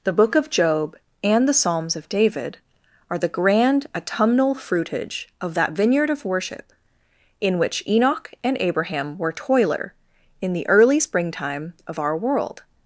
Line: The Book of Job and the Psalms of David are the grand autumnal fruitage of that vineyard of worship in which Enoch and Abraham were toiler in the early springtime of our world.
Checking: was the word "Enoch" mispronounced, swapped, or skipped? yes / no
no